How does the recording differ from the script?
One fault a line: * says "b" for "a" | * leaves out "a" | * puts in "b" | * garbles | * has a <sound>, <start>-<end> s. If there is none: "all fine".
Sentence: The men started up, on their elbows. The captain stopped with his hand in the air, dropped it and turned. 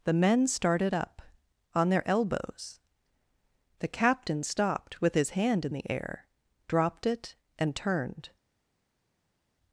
all fine